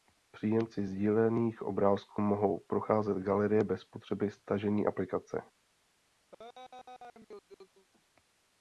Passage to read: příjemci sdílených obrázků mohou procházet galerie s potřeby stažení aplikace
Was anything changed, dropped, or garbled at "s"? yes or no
yes